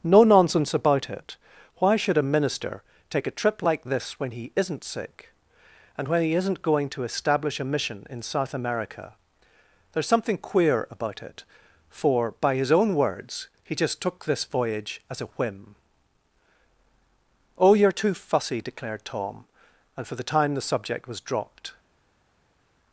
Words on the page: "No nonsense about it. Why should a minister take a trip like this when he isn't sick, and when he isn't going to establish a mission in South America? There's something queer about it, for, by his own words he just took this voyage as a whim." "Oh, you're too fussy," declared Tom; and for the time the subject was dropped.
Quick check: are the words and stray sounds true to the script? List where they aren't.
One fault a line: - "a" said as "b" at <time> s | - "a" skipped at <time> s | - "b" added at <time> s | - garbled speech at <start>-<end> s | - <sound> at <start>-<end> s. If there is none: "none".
none